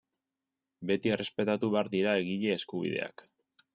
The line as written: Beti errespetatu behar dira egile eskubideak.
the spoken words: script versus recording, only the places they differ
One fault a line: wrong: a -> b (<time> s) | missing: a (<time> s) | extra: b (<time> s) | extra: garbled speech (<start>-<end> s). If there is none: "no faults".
no faults